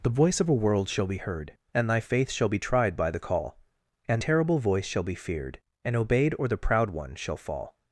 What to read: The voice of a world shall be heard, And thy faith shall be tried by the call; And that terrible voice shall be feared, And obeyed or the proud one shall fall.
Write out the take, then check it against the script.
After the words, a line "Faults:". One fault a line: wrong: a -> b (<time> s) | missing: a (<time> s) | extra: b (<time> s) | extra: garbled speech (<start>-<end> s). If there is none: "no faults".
The voice of a world shall be heard, And thy faith shall be tried by the call; And terrible voice shall be feared, And obeyed or the proud one shall fall.
Faults:
missing: that (4.2 s)